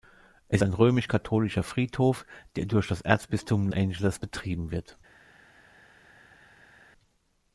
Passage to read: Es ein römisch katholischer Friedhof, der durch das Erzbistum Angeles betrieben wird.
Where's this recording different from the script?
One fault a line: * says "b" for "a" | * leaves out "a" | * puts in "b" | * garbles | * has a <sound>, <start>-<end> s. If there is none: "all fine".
all fine